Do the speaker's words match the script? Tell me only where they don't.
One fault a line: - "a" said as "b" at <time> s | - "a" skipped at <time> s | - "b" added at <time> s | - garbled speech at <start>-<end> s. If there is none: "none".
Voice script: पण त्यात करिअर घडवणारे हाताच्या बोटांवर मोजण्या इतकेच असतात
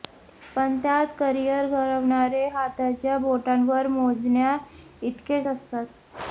none